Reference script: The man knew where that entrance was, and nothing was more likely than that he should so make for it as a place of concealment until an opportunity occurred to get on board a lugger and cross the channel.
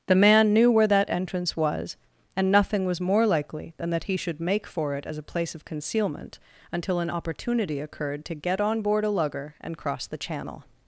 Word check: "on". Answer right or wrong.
right